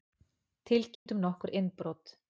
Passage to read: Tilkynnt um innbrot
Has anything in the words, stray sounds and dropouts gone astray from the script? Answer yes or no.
yes